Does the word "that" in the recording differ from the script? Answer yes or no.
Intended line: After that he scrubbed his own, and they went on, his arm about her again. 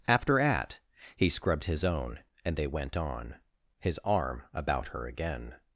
yes